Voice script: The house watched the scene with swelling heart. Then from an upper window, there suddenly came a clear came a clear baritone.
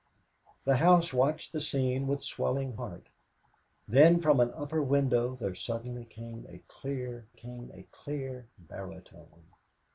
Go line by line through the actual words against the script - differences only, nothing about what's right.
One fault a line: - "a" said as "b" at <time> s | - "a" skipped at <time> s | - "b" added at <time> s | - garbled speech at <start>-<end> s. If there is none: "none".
none